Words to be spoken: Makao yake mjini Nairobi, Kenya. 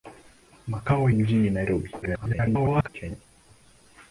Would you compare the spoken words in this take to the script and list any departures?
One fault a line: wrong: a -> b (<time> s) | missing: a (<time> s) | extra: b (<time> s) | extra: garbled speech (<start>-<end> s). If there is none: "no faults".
missing: yake (1.1 s)
extra: garbled speech (2.0-2.9 s)